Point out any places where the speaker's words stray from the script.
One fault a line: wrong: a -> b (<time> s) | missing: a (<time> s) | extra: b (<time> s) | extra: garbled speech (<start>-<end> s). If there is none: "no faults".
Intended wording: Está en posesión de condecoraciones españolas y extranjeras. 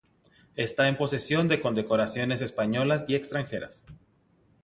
no faults